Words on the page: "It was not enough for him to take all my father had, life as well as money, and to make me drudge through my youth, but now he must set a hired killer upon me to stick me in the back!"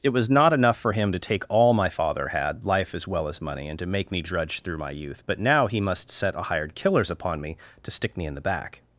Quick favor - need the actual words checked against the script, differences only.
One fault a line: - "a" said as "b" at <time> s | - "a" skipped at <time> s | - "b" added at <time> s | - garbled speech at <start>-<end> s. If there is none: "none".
- "killer" said as "killers" at 6.7 s